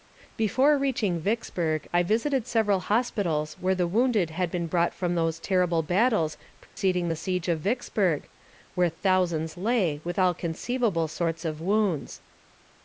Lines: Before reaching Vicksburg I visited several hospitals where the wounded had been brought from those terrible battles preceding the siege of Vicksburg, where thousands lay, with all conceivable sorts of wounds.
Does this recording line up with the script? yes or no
yes